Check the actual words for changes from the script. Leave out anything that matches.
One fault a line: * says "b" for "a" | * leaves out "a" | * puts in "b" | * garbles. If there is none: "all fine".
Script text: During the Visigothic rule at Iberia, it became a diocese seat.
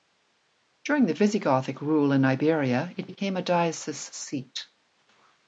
* says "in" for "at"